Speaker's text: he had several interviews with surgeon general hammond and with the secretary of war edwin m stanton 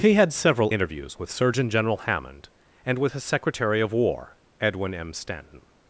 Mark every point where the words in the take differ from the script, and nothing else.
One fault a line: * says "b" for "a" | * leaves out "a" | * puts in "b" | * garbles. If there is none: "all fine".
* says "his" for "the"